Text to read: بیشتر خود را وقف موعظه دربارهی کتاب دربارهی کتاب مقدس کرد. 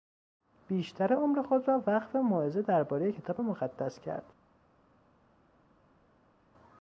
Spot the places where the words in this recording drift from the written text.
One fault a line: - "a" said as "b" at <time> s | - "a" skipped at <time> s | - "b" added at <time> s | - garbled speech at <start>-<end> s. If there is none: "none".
- "عمر" added at 1.1 s
- "دربارهی کتاب" skipped at 3.4 s